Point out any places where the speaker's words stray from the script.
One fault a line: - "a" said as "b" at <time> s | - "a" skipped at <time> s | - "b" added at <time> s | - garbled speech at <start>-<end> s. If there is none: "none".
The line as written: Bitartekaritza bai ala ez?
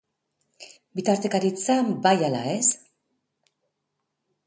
none